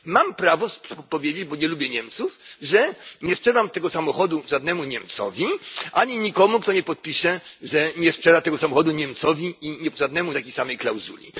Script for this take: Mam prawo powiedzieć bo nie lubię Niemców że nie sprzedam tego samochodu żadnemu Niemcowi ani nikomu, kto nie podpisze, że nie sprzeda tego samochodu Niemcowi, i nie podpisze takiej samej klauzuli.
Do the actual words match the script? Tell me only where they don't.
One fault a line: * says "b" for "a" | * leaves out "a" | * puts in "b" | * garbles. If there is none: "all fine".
* says "żadnemu" for "podpisze"